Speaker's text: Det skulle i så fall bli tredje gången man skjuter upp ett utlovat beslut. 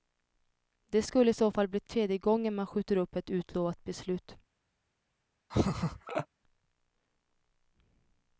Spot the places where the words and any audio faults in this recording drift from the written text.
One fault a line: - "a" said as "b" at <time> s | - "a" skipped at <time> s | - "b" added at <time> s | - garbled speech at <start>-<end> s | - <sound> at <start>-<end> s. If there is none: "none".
- laugh at 5.5-6.3 s